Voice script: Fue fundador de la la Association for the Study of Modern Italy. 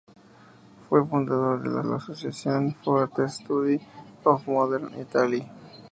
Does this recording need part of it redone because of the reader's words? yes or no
no